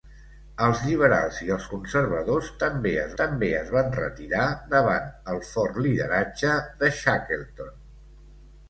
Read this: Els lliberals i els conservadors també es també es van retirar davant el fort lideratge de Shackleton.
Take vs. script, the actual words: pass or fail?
pass